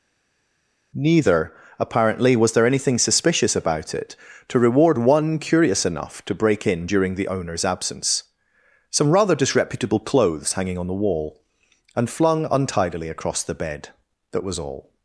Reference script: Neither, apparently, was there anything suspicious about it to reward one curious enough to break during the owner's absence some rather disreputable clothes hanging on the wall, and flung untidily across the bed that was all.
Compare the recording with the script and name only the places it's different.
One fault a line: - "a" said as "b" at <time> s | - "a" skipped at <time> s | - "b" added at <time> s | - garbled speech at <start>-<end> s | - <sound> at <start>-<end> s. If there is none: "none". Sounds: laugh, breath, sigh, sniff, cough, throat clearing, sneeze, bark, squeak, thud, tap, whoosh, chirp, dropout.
- "in" added at 6.7 s